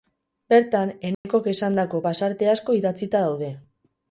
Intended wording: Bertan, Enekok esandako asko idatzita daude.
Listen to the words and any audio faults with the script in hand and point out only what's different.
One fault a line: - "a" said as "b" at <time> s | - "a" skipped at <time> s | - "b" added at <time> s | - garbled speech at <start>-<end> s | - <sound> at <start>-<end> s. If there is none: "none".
- dropout at 1.1-1.2 s
- "pasarte" added at 2.1 s